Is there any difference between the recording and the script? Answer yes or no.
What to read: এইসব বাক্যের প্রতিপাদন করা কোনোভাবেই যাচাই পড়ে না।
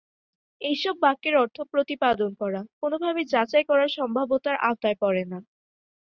yes